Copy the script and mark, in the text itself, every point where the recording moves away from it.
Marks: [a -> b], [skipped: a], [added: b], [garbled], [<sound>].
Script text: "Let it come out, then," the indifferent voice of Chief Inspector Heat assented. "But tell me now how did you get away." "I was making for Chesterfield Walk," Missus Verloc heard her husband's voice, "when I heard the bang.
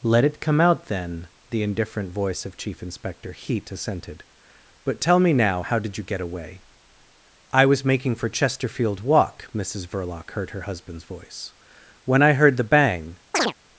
"Let it come out, then," the indifferent voice of Chief Inspector Heat assented. "But tell me now how did you get away." "I was making for Chesterfield Walk," Missus Verloc heard her husband's voice, "when I heard the bang. [chirp]